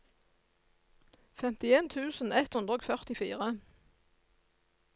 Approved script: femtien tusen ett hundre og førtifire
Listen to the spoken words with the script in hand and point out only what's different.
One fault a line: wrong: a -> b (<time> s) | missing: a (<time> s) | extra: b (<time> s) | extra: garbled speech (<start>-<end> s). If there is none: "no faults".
no faults